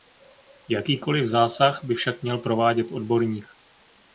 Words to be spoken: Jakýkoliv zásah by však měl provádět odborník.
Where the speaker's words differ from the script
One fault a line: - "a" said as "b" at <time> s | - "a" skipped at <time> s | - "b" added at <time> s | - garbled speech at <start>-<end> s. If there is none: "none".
none